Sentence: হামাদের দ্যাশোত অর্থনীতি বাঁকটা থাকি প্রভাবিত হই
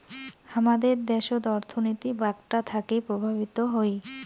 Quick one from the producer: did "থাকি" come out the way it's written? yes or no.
yes